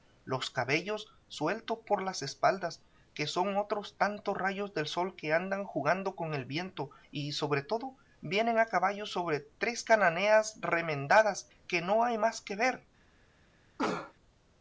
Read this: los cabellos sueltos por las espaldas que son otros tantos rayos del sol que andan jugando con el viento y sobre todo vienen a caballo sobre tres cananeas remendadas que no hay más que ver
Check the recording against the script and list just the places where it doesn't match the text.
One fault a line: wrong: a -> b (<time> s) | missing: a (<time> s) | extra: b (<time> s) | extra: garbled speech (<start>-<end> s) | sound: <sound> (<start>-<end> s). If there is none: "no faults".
sound: cough (13.8-14.1 s)